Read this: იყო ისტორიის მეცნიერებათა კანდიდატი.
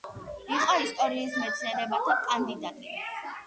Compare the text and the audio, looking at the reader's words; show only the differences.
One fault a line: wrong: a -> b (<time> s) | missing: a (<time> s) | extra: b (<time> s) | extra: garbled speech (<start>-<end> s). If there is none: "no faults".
no faults